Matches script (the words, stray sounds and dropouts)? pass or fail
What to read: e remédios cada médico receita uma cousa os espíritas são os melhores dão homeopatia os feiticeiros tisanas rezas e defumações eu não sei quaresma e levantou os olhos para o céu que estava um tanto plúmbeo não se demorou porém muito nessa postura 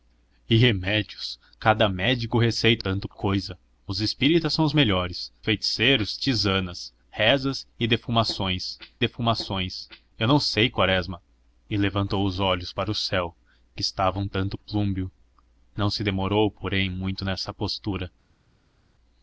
fail